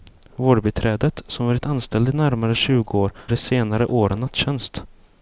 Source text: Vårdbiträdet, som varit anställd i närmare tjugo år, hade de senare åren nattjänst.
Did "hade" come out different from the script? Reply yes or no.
yes